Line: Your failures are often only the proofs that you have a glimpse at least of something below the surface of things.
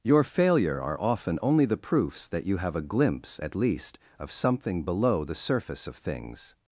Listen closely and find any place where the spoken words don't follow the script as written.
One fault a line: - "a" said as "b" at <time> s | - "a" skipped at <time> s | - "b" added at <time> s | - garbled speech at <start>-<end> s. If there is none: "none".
- "failures" said as "failure" at 0.2 s